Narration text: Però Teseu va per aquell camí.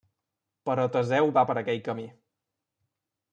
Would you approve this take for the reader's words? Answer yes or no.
yes